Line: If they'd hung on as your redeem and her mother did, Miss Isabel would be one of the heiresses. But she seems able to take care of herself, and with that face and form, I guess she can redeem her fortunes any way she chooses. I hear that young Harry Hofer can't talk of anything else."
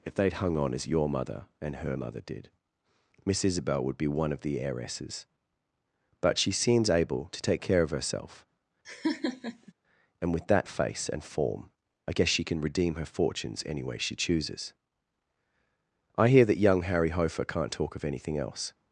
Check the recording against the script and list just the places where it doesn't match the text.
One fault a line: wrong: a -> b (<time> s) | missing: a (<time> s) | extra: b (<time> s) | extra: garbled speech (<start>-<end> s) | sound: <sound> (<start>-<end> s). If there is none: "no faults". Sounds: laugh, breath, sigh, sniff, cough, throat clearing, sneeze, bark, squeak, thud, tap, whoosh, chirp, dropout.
wrong: redeem -> mother (1.1 s)
sound: laugh (8.8-9.7 s)